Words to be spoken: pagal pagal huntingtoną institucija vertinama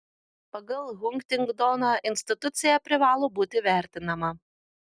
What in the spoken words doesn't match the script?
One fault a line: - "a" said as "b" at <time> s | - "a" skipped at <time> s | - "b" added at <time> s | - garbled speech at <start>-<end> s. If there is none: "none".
- "pagal" skipped at 0.9 s
- "privalo būti" added at 2.9 s